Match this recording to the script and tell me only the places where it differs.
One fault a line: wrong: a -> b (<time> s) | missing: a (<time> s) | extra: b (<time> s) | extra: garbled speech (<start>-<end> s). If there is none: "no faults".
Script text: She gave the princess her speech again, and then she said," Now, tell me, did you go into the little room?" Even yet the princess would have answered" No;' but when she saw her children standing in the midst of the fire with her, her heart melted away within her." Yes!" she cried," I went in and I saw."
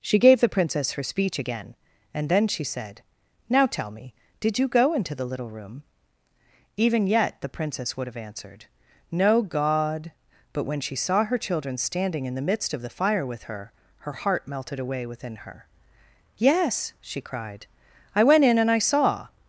extra: god (9.4 s)